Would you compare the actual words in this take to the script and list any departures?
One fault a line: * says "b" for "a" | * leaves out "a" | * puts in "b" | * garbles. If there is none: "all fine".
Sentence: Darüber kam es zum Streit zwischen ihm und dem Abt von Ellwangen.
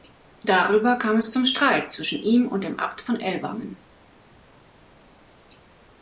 all fine